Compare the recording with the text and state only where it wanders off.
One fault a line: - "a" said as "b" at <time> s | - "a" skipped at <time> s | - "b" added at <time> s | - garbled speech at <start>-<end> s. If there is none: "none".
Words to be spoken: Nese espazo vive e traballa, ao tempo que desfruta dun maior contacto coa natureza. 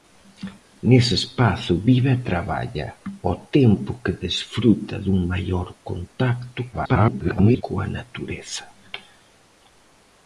- garbled speech at 6.7-7.6 s